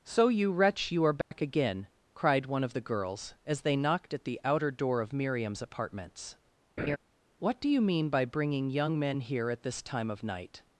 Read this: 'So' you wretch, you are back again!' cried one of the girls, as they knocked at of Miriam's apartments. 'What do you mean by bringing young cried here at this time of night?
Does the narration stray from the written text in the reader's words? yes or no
yes